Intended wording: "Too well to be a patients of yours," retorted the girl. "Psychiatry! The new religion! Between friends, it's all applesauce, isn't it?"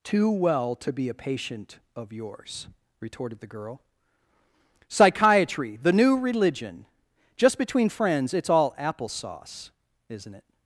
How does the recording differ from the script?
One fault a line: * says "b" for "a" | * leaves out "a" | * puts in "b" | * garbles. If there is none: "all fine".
* says "patient" for "patients"
* puts in "Just"